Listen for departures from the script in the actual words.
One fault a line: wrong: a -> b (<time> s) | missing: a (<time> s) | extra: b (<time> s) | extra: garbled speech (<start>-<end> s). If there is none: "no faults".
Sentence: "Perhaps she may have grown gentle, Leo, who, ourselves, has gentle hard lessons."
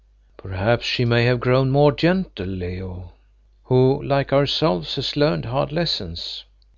extra: more (1.7 s)
extra: like (4.0 s)
wrong: gentle -> learned (5.1 s)